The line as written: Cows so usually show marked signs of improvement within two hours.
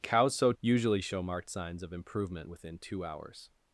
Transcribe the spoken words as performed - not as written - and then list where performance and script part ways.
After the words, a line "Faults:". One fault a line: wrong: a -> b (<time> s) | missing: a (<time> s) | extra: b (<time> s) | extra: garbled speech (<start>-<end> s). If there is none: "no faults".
Cows so usually show marked signs of improvement within two hours.
Faults:
no faults